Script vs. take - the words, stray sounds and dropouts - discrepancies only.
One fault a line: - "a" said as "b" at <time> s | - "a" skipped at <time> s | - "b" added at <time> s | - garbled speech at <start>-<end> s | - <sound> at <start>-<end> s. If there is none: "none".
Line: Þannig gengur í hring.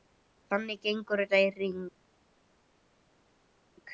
- "þetta" added at 1.2 s